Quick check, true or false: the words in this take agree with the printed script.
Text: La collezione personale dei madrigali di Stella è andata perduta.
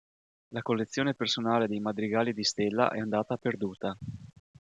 true